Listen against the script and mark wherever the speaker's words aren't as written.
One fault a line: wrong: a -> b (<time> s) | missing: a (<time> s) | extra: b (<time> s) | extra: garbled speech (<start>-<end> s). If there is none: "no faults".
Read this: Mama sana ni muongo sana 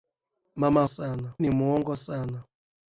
no faults